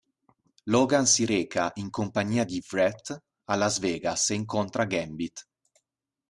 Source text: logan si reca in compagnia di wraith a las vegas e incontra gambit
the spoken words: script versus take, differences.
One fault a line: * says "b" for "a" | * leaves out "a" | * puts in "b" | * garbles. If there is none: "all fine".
all fine